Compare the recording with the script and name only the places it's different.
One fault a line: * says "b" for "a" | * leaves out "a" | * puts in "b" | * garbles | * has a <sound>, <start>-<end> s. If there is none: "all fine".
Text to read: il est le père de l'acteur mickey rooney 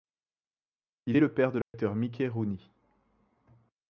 * has a dropout, 1.6-1.7 s